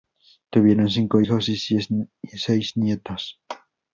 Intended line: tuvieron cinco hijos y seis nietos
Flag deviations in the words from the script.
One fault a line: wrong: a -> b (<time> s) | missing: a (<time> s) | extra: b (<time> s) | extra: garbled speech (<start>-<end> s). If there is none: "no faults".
no faults